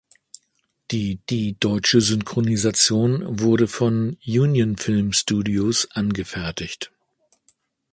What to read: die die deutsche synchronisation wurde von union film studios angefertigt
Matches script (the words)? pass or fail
pass